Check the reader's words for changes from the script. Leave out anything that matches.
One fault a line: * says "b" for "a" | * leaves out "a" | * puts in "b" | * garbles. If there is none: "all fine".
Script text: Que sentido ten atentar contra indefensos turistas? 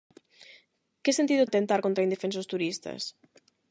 * leaves out "ten"